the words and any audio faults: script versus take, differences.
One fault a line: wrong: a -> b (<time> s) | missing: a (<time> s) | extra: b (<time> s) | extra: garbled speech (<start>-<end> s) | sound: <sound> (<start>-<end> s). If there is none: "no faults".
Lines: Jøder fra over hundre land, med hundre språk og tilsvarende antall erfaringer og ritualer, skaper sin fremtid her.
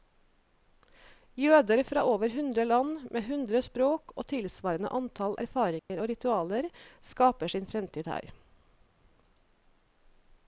sound: dropout (5.8-5.9 s)